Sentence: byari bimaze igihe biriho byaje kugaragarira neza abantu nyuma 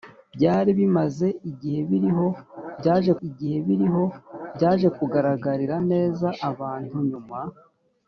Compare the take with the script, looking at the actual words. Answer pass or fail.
fail